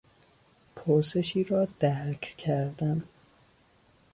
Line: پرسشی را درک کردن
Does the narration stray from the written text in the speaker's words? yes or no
no